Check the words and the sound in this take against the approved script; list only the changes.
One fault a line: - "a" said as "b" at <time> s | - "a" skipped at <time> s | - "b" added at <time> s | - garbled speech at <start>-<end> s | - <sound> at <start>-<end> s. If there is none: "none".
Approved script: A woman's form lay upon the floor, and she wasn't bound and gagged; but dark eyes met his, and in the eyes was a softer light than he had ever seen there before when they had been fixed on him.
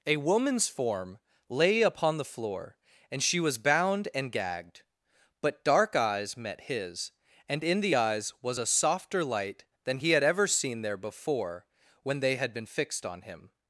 - "wasn't" said as "was" at 3.4 s